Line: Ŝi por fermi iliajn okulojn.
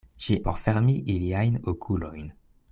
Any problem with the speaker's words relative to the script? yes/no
no